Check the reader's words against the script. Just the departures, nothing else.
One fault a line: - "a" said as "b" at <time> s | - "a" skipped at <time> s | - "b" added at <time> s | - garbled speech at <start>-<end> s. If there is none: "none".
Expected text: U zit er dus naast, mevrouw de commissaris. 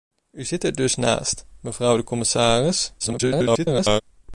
- garbled speech at 3.0-4.0 s